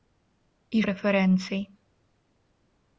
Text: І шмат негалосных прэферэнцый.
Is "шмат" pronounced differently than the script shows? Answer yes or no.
yes